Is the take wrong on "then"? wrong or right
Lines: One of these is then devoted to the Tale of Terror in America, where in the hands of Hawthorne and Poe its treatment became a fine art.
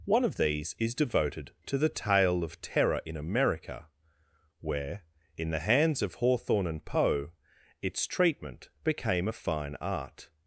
wrong